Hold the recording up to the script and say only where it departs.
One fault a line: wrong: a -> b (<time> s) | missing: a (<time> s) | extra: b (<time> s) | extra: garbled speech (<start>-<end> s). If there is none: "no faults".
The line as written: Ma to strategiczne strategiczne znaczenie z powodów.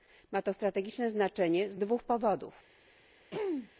missing: strategiczne (1.1 s)
extra: dwóch (1.8 s)